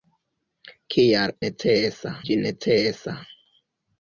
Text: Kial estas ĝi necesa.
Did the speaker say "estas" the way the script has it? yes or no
no